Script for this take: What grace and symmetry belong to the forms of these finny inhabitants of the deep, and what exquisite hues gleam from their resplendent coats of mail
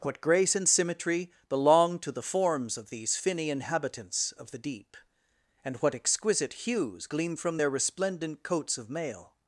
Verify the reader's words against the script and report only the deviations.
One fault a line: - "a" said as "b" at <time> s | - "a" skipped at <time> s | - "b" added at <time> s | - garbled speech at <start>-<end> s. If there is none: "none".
none